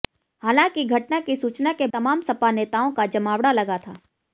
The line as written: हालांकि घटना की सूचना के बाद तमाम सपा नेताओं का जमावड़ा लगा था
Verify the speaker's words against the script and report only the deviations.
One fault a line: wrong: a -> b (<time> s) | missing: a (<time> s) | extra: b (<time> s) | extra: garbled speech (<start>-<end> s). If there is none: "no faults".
missing: बाद (1.9 s)